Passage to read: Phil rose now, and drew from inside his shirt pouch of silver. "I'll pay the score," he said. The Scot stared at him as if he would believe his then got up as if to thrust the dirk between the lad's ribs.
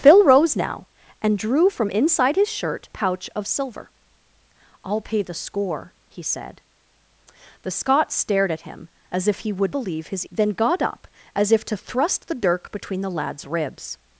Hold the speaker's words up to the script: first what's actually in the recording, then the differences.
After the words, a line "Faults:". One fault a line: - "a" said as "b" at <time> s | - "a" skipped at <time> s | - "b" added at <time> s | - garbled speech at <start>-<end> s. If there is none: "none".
Phil rose now, and drew from inside his shirt pouch of silver. "I'll pay the score," he said. The Scot stared at him as if he would believe his then got up as if to thrust the dirk between the lad's ribs.
Faults:
none